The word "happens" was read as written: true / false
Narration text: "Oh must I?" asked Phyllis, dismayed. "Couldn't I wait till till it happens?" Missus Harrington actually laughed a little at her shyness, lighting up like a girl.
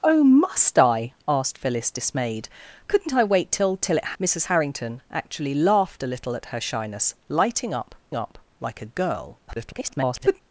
false